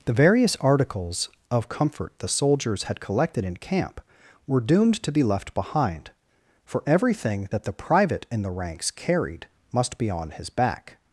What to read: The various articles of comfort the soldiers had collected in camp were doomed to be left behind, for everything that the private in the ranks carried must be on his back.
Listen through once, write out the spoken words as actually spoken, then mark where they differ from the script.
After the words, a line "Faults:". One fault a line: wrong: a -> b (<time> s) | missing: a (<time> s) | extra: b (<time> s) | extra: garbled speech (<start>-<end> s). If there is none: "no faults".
The various articles of comfort the soldiers had collected in camp were doomed to be left behind, for everything that the private in the ranks carried must be on his back.
Faults:
no faults